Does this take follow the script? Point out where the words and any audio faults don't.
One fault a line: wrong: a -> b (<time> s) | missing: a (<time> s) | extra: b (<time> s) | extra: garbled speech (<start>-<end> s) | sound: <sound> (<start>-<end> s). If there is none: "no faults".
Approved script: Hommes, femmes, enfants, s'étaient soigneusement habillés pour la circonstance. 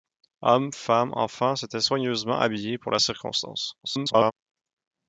extra: garbled speech (3.8-4.3 s)